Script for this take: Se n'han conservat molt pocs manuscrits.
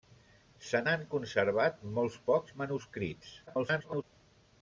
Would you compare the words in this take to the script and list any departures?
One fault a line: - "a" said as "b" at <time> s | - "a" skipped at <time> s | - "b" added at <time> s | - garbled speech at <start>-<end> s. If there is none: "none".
- garbled speech at 3.5-4.0 s